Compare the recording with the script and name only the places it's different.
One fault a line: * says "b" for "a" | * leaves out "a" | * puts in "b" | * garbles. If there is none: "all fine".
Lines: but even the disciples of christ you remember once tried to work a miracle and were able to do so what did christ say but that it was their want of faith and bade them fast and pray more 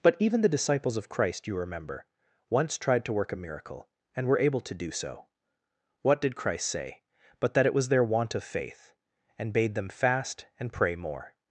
all fine